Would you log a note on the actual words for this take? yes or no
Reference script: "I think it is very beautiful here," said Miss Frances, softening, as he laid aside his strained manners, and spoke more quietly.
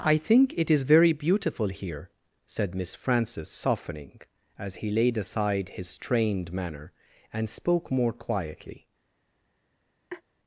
yes